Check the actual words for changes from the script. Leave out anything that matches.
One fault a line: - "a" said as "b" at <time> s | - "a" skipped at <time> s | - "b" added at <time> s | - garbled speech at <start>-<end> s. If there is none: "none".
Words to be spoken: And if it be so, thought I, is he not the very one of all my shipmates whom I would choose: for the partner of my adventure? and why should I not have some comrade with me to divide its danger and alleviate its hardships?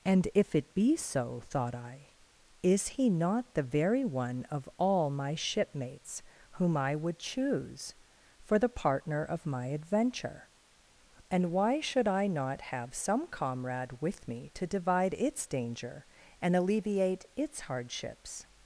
none